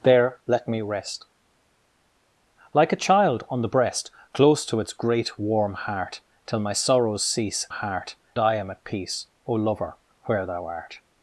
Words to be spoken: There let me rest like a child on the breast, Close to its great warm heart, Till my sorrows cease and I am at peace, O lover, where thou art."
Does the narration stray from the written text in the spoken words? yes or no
yes